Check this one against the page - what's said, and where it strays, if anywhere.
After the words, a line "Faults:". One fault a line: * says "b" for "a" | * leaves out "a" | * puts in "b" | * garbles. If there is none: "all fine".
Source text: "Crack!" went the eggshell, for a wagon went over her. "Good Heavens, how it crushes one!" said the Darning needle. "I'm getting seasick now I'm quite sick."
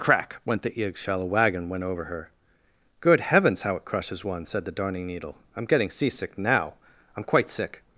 "Crack!" went the eggshell, a wagon went over her. "Good Heavens, how it crushes one!" said the Darning needle. "I'm getting seasick now I'm quite sick."
Faults:
* leaves out "for"